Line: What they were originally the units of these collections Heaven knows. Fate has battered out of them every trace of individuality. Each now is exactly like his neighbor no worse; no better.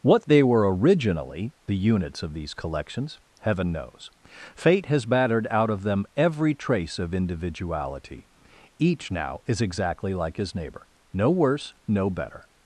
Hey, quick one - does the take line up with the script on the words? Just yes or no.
yes